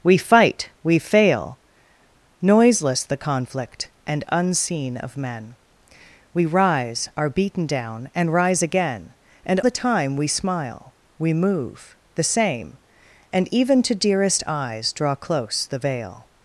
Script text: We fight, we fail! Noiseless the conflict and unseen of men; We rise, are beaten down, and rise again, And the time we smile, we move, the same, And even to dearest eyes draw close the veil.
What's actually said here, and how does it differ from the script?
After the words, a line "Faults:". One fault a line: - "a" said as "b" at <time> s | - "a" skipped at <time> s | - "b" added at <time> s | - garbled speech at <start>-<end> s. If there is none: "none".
We fight, we fail! Noiseless the conflict and unseen of men; We rise, are beaten down, and rise again, And the time we smile, we move, the same, And even to dearest eyes draw close the veil.
Faults:
none